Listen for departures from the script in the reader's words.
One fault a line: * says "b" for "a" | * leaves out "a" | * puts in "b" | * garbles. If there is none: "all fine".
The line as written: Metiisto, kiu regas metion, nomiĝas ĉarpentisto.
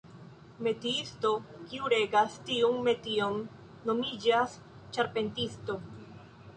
* puts in "tiun"